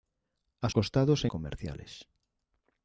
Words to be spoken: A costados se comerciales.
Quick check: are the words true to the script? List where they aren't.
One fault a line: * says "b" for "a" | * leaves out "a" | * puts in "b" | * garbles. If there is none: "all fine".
all fine